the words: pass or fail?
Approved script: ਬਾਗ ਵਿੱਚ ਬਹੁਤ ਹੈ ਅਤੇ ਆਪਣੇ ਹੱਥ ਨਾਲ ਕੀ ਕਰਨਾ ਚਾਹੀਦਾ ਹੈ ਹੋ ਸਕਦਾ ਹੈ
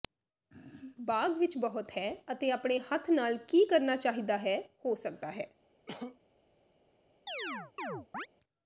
pass